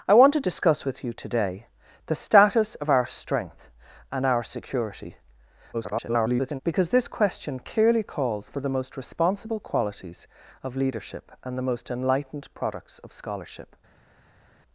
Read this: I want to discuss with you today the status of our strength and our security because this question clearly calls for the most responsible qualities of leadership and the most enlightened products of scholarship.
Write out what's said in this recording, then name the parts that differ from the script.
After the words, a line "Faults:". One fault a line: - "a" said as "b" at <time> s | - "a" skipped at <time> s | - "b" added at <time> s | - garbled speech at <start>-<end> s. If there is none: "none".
I want to discuss with you today the status of our strength and our security [garbled] because this question clearly calls for the most responsible qualities of leadership and the most enlightened products of scholarship.
Faults:
- garbled speech at 5.7-6.6 s